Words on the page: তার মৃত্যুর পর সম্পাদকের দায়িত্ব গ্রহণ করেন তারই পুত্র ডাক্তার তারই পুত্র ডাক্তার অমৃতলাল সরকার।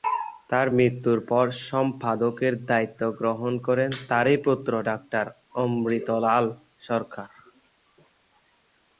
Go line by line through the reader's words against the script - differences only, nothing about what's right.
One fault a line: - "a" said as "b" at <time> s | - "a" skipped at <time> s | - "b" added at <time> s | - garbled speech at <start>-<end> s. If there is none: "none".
- "তারই পুত্র ডাক্তার" skipped at 5.2 s